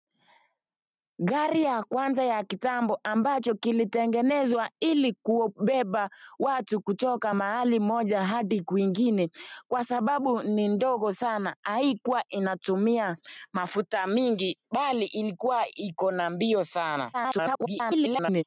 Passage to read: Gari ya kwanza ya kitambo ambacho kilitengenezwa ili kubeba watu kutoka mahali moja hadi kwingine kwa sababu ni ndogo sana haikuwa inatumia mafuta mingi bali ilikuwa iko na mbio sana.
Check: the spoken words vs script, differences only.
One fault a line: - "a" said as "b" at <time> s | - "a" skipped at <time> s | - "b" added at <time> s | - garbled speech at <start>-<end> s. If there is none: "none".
- garbled speech at 17.1-18.4 s